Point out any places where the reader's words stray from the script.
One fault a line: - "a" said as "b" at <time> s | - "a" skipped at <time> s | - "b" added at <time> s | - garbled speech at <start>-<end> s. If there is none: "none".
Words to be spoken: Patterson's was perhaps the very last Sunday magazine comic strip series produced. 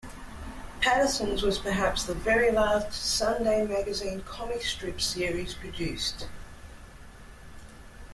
none